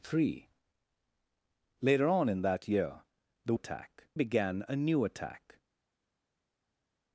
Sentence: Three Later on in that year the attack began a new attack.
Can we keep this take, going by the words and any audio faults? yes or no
yes